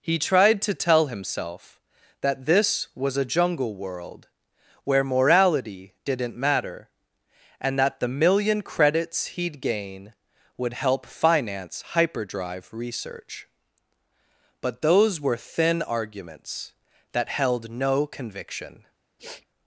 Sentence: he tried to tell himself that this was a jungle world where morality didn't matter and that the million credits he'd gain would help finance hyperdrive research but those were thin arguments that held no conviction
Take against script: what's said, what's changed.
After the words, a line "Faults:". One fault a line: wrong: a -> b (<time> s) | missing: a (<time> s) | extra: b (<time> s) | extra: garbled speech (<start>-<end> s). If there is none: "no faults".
he tried to tell himself that this was a jungle world where morality didn't matter and that the million credits he'd gain would help finance hyperdrive research but those were thin arguments that held no conviction
Faults:
no faults